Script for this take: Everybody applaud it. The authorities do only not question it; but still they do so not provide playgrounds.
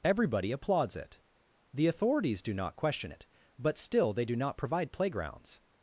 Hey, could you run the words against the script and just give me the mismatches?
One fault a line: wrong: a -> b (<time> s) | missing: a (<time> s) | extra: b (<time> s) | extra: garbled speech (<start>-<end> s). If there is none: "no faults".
wrong: applaud -> applauds (0.5 s)
missing: only (2.5 s)
missing: so (4.4 s)